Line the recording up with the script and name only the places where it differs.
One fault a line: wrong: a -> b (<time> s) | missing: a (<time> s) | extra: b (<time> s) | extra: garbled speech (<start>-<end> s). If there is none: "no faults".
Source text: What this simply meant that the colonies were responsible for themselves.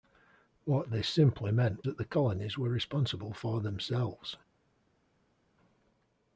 no faults